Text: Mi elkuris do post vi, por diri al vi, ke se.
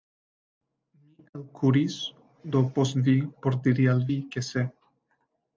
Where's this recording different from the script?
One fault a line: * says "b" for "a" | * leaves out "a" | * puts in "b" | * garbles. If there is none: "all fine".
all fine